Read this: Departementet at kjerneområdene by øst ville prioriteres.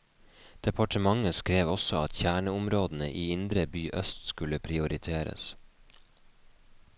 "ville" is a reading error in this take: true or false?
true